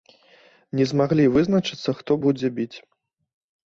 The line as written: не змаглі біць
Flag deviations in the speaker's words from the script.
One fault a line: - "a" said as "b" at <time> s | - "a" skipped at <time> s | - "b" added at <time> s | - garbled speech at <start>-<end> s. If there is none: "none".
- "вызначыцца хто будзе" added at 1.4 s